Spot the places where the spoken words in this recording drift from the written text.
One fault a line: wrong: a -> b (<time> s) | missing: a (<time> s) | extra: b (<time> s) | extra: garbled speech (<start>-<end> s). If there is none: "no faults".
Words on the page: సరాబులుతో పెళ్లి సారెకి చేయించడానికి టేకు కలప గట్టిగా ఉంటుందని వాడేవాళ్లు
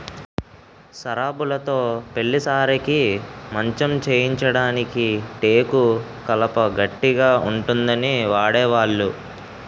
extra: మంచం (3.5 s)